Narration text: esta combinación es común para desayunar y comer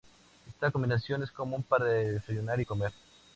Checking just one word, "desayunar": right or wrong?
right